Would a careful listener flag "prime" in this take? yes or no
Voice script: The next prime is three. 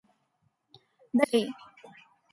yes